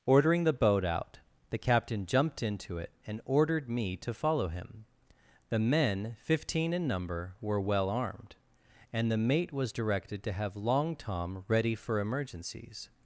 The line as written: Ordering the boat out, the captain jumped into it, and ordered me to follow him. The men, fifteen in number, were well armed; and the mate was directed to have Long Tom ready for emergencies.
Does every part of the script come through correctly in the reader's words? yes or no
yes